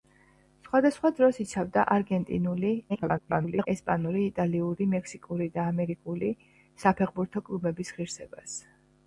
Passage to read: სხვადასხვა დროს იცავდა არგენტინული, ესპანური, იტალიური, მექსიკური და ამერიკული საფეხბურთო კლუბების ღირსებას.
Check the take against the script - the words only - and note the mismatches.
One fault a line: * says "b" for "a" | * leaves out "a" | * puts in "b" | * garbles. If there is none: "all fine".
* garbles